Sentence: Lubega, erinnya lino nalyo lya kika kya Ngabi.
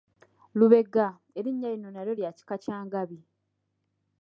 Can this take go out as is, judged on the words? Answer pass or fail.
pass